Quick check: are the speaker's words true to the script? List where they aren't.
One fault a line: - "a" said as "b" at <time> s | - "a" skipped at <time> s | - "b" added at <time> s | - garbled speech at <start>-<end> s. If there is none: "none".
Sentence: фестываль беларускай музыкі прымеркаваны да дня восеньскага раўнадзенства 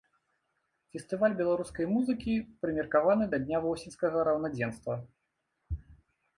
none